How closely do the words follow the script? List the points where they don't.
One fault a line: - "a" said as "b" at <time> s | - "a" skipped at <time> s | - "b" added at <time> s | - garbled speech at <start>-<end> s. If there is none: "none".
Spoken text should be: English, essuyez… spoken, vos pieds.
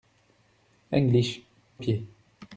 - "essuyez spoken vos" skipped at 1.4 s